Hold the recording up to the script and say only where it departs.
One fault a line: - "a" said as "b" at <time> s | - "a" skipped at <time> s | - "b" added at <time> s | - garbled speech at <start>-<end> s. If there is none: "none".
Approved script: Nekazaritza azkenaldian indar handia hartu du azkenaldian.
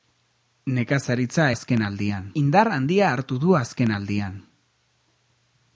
none